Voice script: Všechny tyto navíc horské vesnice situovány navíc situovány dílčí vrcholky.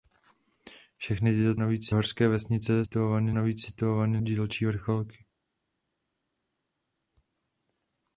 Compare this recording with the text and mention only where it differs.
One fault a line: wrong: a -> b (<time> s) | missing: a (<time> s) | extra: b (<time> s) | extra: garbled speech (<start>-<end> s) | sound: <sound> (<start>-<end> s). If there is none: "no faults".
no faults